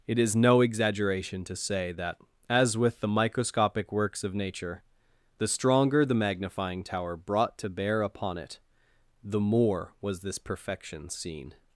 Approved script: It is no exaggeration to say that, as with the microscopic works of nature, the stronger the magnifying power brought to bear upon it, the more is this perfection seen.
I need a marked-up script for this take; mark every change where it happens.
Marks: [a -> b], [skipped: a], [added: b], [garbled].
It is no exaggeration to say that, as with the microscopic works of nature, the stronger the magnifying [power -> tower] brought to bear upon it, the more [is -> was] this perfection seen.